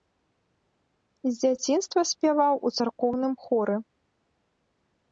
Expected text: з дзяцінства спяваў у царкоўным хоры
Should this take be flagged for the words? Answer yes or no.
no